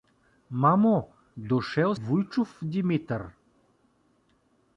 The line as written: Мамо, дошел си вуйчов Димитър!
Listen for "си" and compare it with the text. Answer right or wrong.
wrong